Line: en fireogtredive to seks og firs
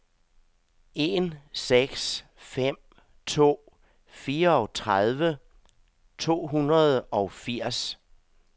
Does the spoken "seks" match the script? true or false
false